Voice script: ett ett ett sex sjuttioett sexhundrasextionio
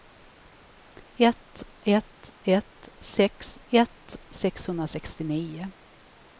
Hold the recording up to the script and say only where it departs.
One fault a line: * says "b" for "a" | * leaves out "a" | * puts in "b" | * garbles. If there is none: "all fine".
* says "ett" for "sjuttioett"